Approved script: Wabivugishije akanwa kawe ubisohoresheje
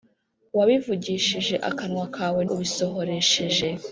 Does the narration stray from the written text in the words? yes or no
no